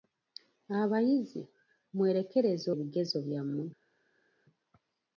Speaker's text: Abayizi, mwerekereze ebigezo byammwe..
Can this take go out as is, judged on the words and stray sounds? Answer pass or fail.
pass